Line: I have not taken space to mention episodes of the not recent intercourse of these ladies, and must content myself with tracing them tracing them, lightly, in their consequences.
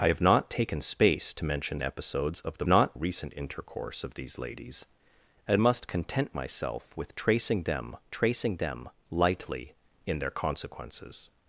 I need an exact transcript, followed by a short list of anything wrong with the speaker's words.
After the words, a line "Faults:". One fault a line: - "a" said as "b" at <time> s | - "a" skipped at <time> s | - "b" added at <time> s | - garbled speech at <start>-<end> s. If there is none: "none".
I have not taken space to mention episodes of the not recent intercourse of these ladies, and must content myself with tracing them tracing them, lightly, in their consequences.
Faults:
none